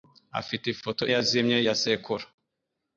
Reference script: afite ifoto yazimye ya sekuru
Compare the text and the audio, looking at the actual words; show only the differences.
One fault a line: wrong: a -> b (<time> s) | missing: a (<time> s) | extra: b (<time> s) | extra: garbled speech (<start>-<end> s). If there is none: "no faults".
no faults